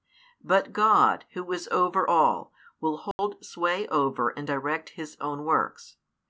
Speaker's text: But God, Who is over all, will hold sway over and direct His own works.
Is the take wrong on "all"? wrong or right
right